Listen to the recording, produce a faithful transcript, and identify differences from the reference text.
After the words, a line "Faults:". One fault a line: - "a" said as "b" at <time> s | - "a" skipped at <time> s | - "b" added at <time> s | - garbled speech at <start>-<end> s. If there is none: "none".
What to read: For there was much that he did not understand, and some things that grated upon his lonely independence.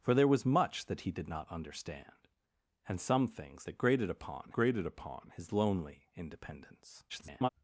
For there was much that he did not understand, and some things that grated upon grated upon his lonely independence. [garbled]
Faults:
- "grated upon" added at 4.5 s
- garbled speech at 7.1-7.5 s